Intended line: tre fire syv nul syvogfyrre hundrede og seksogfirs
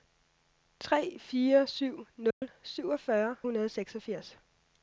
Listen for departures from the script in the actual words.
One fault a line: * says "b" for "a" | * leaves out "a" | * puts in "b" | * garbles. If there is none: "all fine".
all fine